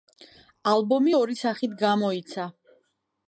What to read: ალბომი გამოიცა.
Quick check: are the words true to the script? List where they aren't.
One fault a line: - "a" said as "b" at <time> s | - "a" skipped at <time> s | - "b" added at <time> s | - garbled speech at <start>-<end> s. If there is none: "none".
- "ორი სახით" added at 1.2 s